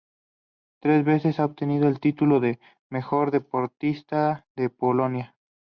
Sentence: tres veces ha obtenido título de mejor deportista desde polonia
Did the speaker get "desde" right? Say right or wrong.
wrong